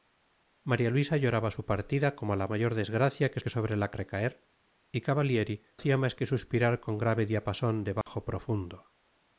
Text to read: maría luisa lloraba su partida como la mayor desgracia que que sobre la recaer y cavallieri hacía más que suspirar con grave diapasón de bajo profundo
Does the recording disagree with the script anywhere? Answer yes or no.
no